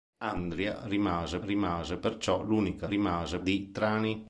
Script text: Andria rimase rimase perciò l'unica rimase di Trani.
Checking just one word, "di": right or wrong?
right